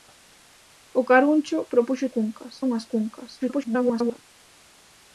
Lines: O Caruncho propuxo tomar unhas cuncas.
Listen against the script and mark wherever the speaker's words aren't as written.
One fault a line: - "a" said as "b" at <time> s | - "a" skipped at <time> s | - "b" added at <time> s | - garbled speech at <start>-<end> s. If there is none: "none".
- "tomar" said as "cuncas" at 2.1 s
- garbled speech at 3.4-4.2 s